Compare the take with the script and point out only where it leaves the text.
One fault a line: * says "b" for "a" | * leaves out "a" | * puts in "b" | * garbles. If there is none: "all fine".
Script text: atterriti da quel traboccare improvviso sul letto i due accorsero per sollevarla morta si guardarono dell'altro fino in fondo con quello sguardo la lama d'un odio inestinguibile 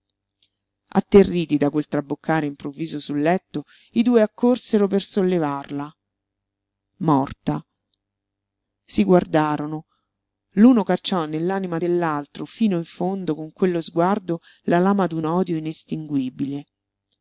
* puts in "l'uno cacciò nell'anima"